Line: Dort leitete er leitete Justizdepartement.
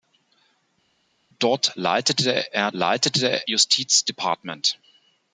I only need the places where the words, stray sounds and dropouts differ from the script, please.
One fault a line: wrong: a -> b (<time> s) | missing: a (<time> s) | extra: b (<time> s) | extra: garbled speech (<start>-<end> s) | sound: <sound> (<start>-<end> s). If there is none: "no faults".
no faults